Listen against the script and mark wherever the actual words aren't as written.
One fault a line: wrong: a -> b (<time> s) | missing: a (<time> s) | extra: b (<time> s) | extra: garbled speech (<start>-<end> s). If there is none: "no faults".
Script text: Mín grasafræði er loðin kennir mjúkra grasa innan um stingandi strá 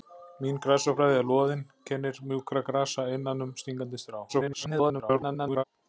extra: garbled speech (4.3-5.6 s)